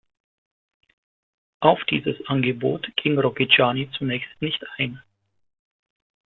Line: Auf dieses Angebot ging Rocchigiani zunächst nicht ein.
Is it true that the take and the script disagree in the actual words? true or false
false